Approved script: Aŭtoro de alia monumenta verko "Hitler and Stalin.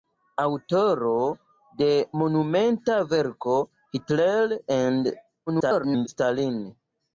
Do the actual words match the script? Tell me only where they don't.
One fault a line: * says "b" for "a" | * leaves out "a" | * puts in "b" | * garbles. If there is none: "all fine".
* leaves out "alia"
* garbles